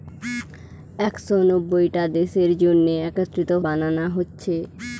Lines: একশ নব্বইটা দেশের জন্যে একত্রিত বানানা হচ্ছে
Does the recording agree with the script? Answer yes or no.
yes